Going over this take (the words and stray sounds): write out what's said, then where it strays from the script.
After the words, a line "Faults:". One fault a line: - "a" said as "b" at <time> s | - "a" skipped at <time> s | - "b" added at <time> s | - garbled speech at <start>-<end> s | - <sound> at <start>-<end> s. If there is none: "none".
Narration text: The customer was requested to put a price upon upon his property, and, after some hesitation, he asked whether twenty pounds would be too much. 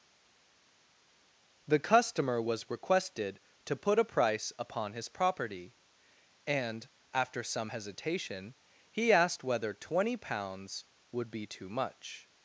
The customer was requested to put a price upon his property, and, after some hesitation, he asked whether twenty pounds would be too much.
Faults:
- "upon" skipped at 4.9 s